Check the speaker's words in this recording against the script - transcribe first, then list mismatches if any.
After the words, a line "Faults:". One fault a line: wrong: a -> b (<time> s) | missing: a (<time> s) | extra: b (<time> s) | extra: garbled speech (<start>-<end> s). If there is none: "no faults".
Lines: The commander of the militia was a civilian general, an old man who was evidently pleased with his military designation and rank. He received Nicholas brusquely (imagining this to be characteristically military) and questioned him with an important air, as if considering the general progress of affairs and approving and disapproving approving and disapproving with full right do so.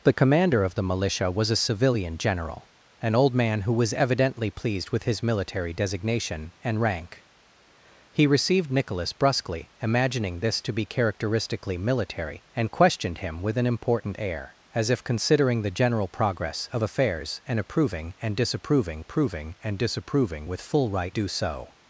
The commander of the militia was a civilian general, an old man who was evidently pleased with his military designation and rank. He received Nicholas brusquely (imagining this to be characteristically military) and questioned him with an important air, as if considering the general progress of affairs and approving and disapproving approving and disapproving with full right do so.
Faults:
no faults